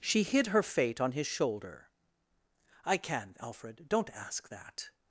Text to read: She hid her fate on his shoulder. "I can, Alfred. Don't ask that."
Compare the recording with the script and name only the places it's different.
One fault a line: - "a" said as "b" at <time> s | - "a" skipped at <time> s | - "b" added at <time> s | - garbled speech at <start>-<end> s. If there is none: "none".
none